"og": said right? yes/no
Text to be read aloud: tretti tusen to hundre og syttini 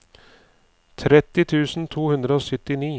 yes